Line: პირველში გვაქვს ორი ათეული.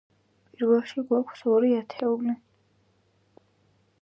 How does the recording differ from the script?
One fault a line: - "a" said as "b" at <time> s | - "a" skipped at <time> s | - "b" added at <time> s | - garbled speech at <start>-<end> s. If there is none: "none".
none